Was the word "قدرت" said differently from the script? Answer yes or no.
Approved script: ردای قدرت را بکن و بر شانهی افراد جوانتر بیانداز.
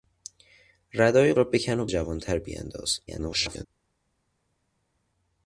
yes